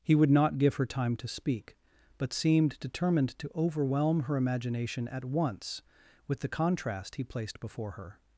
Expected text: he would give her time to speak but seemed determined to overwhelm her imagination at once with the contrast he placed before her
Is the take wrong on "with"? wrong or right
right